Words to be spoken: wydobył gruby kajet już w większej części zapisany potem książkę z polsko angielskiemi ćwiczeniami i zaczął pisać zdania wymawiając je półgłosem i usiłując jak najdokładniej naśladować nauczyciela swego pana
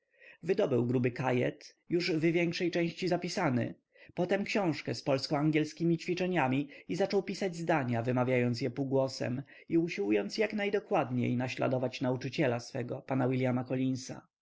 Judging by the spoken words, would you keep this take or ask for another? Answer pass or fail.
pass